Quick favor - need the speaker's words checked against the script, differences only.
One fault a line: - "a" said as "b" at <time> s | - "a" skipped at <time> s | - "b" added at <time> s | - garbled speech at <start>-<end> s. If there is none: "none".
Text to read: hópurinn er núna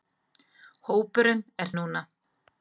none